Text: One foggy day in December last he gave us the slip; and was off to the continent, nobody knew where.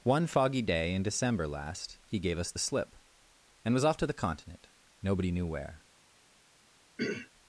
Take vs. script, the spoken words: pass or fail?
pass